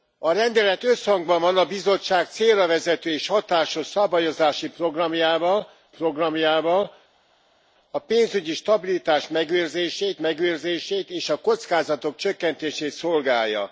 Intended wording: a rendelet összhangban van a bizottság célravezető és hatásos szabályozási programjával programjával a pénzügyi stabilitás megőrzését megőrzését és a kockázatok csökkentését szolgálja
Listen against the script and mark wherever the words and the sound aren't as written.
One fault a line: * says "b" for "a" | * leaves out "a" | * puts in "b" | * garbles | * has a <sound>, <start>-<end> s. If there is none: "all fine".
all fine